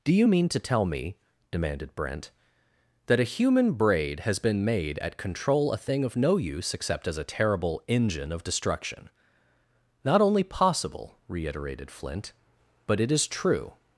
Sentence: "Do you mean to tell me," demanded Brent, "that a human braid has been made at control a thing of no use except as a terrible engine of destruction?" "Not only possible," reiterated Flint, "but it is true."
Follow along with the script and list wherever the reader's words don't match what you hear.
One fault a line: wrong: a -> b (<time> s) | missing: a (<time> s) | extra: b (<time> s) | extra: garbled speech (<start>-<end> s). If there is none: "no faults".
no faults